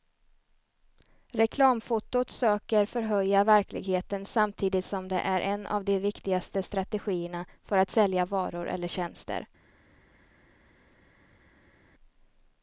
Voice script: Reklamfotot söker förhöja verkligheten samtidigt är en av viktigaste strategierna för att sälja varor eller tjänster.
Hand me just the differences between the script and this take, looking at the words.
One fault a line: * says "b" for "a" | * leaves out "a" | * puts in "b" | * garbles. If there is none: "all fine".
* puts in "som det"
* puts in "de"